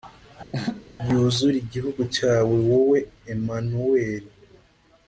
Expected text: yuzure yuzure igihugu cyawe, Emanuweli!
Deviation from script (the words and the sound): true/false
true